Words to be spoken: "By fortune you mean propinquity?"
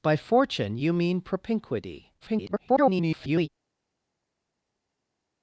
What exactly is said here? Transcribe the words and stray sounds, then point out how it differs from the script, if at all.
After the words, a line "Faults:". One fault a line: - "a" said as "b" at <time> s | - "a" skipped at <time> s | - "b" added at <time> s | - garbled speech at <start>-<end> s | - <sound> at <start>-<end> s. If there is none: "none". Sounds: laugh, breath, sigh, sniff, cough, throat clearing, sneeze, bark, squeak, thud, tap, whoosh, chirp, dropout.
"By fortune you mean propinquity?" [garbled]
Faults:
- garbled speech at 2.2-3.5 s